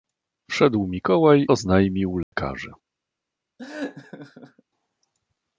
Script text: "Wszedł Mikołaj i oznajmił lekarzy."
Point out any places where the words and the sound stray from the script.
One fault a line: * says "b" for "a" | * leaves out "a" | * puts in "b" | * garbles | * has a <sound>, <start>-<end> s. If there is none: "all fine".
* leaves out "i"
* has a dropout, 2.2-2.3 s
* has a laugh, 3.6-4.6 s